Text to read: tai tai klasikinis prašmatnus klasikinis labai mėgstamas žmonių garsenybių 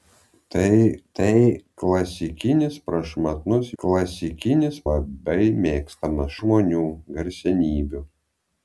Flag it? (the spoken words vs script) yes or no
no